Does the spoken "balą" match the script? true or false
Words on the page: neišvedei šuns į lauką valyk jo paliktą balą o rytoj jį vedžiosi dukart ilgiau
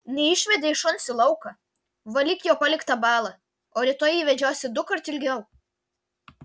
true